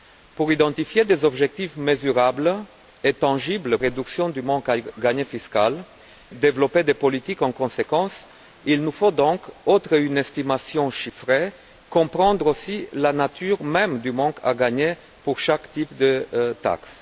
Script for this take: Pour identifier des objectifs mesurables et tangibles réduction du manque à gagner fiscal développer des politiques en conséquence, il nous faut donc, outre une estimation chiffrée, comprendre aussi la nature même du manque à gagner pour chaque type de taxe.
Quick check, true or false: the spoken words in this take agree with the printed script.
true